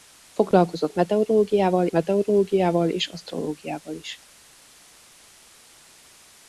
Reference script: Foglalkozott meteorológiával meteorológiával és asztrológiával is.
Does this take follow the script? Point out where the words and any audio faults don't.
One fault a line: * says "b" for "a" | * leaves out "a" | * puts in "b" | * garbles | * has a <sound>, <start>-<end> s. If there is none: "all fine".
all fine